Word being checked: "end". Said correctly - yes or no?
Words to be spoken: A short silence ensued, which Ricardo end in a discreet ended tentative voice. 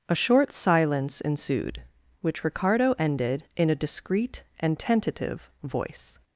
no